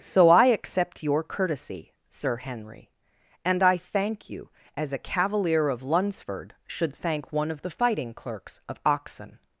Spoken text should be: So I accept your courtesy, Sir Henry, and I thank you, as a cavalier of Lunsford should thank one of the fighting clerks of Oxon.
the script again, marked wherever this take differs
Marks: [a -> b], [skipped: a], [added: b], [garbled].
So I accept your courtesy, Sir Henry, and I thank you, as a cavalier of Lunsford should thank one of the fighting clerks of Oxon.